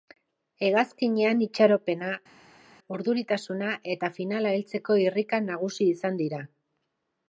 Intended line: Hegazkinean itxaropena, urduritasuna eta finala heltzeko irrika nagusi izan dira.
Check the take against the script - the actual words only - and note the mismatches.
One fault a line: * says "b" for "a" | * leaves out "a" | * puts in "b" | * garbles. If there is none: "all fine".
all fine